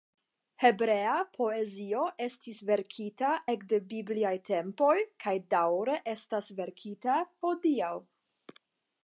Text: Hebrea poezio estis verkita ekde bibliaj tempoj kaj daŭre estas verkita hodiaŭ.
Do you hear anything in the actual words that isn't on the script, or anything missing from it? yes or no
no